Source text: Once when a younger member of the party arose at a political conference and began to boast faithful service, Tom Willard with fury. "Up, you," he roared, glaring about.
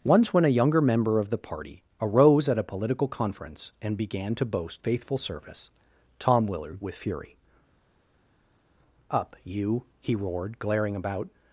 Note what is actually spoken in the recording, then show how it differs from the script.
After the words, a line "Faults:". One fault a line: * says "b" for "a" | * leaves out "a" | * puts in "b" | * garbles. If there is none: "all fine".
Once when a younger member of the party arose at a political conference and began to boast faithful service, Tom Willard with fury. "Up, you," he roared, glaring about.
Faults:
all fine